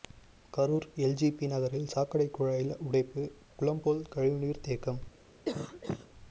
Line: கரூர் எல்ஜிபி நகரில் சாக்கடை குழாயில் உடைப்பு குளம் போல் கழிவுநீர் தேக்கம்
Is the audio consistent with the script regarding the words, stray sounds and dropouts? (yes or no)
no